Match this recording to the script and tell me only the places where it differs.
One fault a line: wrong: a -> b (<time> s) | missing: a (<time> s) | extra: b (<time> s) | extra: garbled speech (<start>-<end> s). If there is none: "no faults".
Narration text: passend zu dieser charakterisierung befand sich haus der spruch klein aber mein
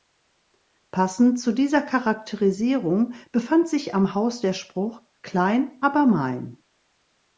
extra: am (3.9 s)